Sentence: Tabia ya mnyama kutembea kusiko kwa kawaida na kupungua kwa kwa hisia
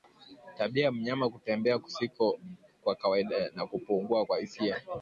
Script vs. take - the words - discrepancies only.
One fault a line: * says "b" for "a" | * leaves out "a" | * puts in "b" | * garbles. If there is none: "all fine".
* leaves out "kwa"